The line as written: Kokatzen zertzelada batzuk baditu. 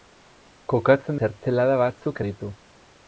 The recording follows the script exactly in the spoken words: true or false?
true